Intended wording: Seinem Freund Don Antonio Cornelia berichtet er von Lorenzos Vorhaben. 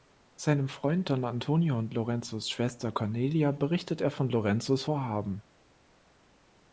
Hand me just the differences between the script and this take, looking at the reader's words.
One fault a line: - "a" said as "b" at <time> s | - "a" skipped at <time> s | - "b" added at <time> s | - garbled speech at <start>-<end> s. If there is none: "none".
- "und Lorenzos Schwester" added at 1.8 s